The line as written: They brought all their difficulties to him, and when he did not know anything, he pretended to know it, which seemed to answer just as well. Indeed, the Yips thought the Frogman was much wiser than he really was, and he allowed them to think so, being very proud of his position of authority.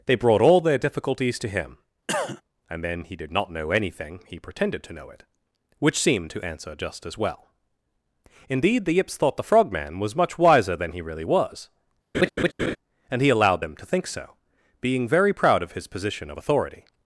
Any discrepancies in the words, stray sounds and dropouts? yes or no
yes